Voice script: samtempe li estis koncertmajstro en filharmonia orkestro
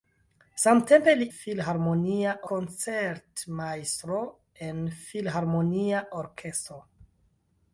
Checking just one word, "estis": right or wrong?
wrong